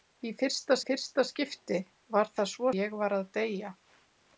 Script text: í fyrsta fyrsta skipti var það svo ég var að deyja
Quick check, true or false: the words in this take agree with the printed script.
true